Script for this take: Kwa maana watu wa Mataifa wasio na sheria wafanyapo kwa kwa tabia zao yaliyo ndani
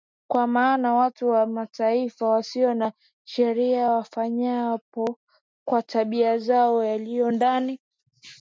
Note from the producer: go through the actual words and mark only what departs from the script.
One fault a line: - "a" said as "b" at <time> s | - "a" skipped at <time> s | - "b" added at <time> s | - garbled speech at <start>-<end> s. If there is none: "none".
- "kwa" skipped at 5.8 s